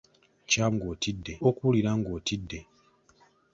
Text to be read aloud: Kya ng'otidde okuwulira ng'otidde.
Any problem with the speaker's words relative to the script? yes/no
no